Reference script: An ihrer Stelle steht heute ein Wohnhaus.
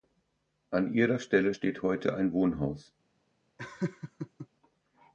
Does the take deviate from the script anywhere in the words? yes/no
no